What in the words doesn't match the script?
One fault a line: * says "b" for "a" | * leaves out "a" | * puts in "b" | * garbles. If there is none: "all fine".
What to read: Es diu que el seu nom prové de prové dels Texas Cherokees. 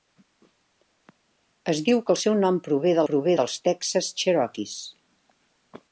all fine